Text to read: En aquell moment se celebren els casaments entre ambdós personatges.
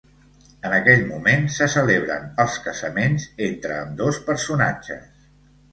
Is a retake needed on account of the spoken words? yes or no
no